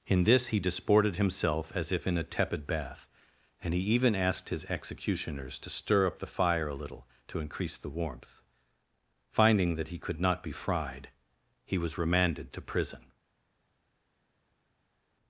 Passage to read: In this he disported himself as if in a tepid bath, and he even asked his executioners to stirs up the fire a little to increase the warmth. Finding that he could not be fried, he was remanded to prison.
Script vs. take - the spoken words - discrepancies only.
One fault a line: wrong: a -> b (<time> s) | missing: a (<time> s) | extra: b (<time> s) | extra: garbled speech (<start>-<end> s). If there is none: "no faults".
wrong: stirs -> stir (5.7 s)